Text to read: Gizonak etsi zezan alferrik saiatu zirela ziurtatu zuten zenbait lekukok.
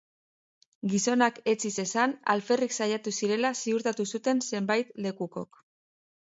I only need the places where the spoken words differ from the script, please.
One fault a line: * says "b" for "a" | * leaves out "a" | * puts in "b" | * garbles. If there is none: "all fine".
all fine